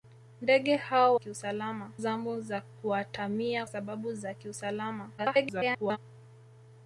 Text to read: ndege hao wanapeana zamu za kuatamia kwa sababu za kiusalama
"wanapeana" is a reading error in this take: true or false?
true